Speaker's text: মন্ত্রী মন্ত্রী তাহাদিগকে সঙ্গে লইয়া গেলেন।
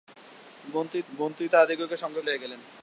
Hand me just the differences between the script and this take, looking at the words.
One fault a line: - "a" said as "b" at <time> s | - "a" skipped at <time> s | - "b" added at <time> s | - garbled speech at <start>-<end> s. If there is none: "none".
none